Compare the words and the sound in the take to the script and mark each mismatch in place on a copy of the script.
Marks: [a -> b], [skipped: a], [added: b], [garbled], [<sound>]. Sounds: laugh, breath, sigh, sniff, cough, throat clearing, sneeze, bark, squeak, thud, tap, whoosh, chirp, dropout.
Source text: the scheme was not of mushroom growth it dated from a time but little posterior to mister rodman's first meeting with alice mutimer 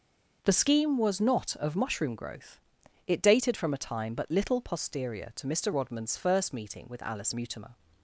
the scheme was not of mushroom growth it dated from a time but little posterior to mister rodman's first meeting with alice mutimer